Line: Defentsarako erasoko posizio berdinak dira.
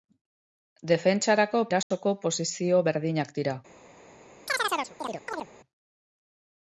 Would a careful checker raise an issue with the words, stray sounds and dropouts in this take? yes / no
yes